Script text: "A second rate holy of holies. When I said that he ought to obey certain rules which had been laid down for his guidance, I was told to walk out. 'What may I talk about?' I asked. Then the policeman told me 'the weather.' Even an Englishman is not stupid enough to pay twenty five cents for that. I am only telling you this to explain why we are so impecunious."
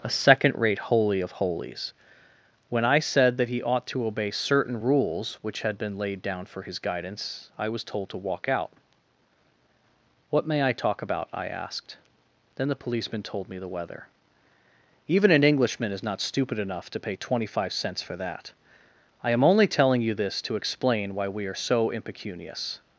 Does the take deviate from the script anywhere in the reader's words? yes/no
no